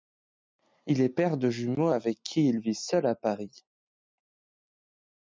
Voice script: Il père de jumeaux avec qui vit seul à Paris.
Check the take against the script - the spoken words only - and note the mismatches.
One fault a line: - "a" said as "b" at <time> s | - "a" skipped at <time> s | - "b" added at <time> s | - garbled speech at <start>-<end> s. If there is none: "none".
- "est" added at 1.0 s
- "il" added at 2.5 s